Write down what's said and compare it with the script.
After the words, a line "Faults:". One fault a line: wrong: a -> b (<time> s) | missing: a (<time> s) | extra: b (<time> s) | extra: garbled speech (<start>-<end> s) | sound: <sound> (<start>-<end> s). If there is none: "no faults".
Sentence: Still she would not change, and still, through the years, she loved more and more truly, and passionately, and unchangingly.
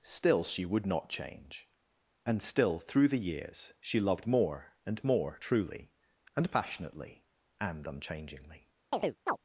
Still she would not change, and still, through the years, she loved more and more truly, and passionately, and unchangingly.
Faults:
sound: chirp (8.9-9.4 s)